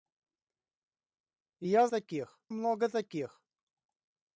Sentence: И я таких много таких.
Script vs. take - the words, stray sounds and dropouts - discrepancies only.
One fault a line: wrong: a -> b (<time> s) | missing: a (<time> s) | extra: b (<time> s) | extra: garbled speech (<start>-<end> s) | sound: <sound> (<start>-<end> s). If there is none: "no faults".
no faults